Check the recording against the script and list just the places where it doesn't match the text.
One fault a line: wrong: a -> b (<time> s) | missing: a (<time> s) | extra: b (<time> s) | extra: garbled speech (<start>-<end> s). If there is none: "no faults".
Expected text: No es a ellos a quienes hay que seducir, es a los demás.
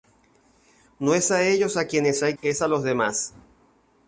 missing: que seducir (2.4 s)